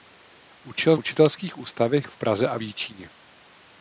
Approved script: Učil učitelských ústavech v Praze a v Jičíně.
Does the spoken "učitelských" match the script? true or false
true